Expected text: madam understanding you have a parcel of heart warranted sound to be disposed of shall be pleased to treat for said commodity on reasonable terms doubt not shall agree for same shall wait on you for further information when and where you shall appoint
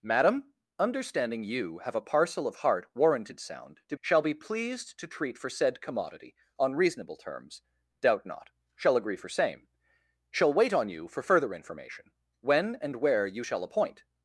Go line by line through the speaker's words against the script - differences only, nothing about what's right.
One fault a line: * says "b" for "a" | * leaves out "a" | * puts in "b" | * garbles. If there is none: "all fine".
* leaves out "be disposed of"